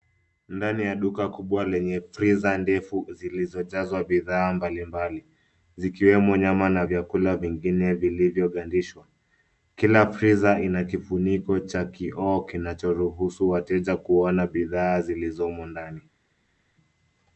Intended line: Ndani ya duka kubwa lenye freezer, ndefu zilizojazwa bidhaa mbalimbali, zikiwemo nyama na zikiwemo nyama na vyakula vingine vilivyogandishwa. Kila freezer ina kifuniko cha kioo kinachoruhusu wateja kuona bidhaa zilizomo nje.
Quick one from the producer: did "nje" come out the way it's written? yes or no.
no